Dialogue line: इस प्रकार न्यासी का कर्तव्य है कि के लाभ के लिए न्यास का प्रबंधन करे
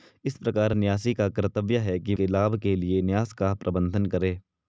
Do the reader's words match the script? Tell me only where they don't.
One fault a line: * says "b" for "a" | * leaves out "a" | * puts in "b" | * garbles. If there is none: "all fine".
all fine